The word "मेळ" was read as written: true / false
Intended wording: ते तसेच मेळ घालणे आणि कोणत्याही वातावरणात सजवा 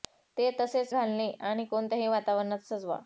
false